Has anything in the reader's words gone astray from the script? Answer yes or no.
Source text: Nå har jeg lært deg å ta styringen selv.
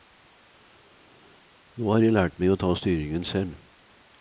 yes